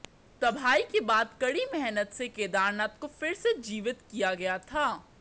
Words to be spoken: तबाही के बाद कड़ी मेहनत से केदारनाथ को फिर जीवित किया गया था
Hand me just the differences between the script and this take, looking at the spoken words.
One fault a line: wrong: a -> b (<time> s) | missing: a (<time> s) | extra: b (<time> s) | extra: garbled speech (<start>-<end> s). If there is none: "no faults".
extra: से (3.3 s)